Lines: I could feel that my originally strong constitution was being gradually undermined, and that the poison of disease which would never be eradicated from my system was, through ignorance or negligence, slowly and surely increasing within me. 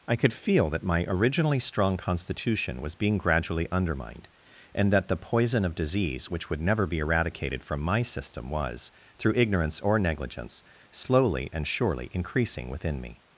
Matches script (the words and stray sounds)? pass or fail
pass